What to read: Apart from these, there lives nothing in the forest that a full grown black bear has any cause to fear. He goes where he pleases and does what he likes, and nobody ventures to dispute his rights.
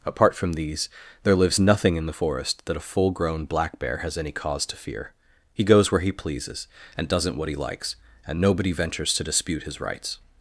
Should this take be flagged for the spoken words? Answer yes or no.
yes